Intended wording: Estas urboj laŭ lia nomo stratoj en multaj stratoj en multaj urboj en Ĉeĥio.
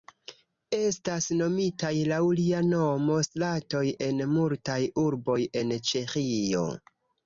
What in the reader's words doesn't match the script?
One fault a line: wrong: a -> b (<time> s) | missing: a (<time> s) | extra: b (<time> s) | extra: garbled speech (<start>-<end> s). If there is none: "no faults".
wrong: urboj -> nomitaj (1.4 s)
missing: stratoj en multaj (4.8 s)